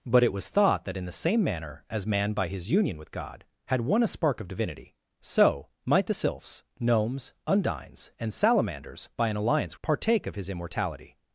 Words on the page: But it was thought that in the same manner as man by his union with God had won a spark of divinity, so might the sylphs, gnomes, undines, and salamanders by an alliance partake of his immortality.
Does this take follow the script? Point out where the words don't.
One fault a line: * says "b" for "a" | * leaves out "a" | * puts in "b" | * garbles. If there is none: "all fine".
all fine